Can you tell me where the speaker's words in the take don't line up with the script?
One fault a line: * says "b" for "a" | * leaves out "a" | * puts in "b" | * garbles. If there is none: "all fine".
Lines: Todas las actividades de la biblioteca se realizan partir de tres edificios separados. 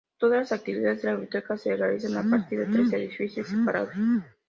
* puts in "a"